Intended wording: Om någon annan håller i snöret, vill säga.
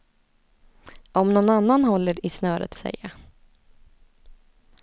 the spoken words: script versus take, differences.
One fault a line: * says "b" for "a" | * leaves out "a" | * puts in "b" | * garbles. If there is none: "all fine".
* leaves out "vill"